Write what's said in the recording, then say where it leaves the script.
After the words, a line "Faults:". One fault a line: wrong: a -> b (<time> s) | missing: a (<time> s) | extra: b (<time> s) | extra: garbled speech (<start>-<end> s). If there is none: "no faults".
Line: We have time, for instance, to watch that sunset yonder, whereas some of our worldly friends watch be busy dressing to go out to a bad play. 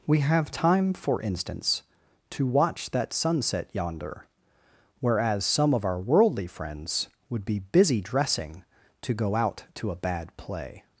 We have time, for instance, to watch that sunset yonder, whereas some of our worldly friends would be busy dressing to go out to a bad play.
Faults:
wrong: watch -> would (7.3 s)